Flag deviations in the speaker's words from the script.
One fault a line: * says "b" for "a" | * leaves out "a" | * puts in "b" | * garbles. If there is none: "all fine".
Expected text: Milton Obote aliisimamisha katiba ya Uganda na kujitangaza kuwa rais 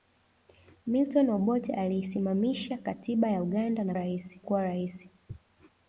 * says "rais" for "kujitangaza"